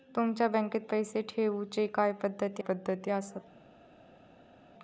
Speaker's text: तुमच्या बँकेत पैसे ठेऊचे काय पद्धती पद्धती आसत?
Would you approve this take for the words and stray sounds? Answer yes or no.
yes